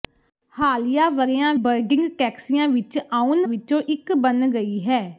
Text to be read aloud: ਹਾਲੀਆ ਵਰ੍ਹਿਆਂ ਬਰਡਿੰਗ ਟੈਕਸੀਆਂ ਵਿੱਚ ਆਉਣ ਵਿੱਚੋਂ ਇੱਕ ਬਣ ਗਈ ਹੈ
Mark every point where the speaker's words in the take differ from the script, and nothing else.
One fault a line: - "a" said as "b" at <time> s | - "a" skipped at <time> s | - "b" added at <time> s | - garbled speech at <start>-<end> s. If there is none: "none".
none